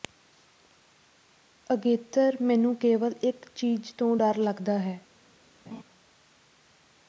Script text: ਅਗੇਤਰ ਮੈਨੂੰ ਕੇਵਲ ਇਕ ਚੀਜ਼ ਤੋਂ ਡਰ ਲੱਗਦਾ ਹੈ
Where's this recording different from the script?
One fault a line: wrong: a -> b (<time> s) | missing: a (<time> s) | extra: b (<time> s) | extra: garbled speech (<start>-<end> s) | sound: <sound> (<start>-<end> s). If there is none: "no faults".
sound: laugh (5.7-5.8 s)